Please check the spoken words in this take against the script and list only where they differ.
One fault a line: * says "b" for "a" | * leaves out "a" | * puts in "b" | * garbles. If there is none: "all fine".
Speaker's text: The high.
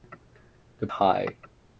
all fine